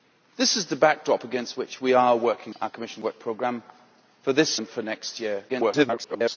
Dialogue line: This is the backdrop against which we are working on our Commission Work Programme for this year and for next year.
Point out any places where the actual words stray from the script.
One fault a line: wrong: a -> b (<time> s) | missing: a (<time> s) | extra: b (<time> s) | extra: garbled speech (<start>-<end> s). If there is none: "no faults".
missing: on (2.5 s)
missing: year (4.6 s)
extra: garbled speech (5.5-6.4 s)